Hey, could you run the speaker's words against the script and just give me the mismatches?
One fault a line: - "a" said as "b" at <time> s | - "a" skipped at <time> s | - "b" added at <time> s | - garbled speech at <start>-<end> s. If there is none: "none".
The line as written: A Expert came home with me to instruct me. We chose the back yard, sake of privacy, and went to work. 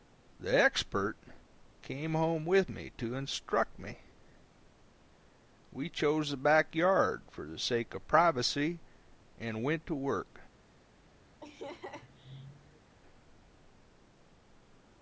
- "A" said as "The" at 0.4 s
- "for the" added at 7.3 s